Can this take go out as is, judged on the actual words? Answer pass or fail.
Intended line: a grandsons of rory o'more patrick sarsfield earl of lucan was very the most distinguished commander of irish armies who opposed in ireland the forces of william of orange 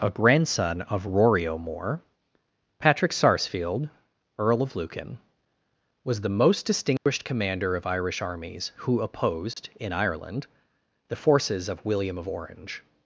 fail